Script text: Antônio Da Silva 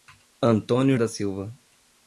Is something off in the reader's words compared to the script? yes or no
no